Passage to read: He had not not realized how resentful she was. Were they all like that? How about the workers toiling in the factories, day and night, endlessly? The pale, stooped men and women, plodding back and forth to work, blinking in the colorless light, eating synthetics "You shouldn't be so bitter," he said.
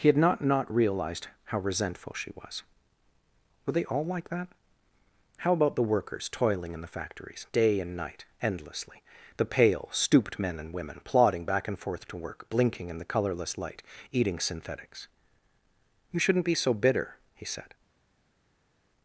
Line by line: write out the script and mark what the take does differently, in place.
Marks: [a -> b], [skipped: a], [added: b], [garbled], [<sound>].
He had not not realized how resentful she was. Were they all like that? How about the workers toiling in the factories, day and night, endlessly? The pale, stooped men and women, plodding back and forth to work, blinking in the colorless light, eating synthetics "You shouldn't be so bitter," he said.